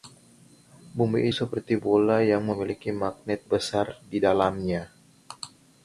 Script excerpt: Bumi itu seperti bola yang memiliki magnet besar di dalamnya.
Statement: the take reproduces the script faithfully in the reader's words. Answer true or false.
false